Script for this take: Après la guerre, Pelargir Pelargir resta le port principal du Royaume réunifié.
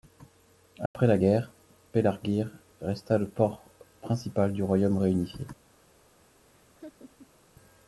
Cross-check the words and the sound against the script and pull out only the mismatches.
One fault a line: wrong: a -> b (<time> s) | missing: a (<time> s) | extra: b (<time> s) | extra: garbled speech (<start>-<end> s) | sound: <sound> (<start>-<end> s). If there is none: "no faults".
sound: dropout (0.9-0.9 s)
missing: Pelargir (2.5 s)
sound: laugh (6.5-7.4 s)